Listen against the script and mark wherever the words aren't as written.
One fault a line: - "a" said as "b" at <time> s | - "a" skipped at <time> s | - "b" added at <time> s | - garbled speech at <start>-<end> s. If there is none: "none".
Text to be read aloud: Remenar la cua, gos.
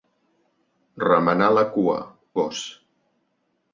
none